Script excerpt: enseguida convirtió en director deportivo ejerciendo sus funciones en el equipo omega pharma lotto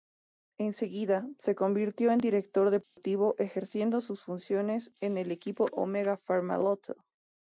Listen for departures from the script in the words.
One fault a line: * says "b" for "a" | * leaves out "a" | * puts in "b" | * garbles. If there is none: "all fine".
* puts in "se"